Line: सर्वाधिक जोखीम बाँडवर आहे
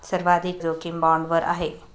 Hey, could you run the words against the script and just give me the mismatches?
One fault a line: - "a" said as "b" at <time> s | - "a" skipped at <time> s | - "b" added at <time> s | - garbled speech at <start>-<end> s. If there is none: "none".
none